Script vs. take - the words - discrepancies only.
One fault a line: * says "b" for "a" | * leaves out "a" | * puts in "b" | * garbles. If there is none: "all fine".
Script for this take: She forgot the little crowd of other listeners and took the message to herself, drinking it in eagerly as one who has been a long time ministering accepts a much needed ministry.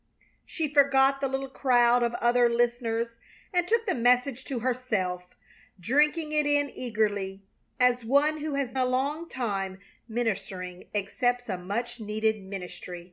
* leaves out "been"